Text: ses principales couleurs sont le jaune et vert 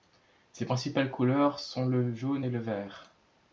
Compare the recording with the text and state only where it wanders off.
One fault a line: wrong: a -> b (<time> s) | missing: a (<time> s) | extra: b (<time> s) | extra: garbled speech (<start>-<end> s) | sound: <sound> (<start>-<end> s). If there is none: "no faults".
extra: le (2.5 s)